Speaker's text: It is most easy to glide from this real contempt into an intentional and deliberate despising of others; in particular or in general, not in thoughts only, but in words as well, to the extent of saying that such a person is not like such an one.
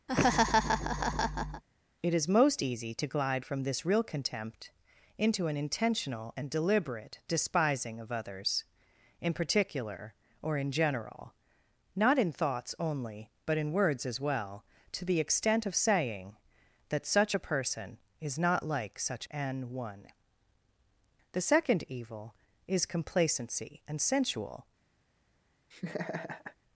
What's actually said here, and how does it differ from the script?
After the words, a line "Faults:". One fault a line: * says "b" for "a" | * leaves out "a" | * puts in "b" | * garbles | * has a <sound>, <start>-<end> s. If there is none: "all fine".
It is most easy to glide from this real contempt into an intentional and deliberate despising of others; in particular or in general, not in thoughts only, but in words as well, to the extent of saying that such a person is not like such an one. The second evil is complacency and sensual
Faults:
* has a laugh, 0.1-1.6 s
* puts in "The second evil is complacency and sensual"
* has a laugh, 25.7-26.6 s